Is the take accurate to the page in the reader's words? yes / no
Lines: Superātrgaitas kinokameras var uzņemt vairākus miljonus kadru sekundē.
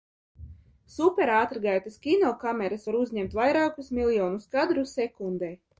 yes